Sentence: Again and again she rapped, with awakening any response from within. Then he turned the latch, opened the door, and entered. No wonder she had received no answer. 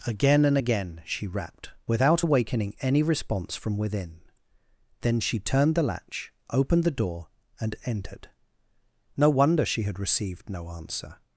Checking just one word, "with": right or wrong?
wrong